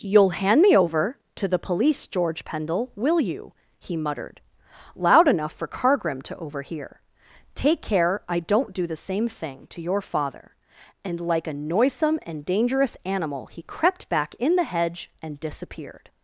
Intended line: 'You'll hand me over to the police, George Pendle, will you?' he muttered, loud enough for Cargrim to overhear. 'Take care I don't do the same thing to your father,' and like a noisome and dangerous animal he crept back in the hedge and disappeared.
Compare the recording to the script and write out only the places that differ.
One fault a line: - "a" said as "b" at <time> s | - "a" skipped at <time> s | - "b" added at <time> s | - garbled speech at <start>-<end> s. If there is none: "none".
none